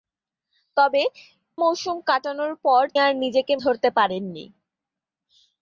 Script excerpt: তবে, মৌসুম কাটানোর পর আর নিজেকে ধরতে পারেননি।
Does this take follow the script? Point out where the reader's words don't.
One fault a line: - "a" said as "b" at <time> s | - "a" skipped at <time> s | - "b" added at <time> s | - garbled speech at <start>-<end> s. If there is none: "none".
none